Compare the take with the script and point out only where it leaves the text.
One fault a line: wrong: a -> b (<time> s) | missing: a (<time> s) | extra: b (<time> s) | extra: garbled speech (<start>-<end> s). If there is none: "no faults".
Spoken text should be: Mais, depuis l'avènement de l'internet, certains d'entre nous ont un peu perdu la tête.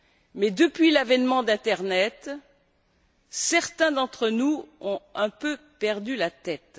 no faults